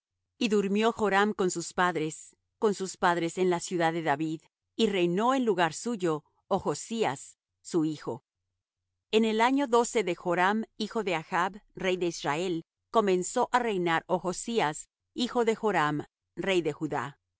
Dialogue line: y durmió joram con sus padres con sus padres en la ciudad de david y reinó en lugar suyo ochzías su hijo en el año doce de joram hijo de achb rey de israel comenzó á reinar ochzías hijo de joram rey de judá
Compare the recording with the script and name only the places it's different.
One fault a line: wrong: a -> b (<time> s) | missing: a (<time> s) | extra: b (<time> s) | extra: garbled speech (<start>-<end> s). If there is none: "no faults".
no faults